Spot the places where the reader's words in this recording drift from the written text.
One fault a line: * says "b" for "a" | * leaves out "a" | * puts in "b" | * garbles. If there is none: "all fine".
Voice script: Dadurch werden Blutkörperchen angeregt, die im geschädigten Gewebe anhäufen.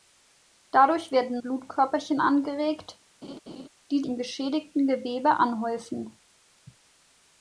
all fine